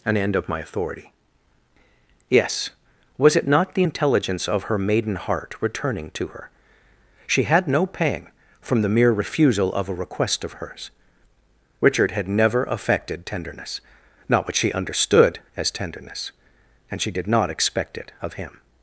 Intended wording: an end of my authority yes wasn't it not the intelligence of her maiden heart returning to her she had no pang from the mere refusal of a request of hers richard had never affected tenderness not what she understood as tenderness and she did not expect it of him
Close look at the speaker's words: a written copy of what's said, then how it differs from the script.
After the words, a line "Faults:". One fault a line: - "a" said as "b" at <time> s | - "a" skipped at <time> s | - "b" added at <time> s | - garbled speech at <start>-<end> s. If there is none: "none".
an end of my authority yes was it not the intelligence of her maiden heart returning to her she had no pang from the mere refusal of a request of hers richard had never affected tenderness not what she understood as tenderness and she did not expect it of him
Faults:
- "wasn't" said as "was" at 3.2 s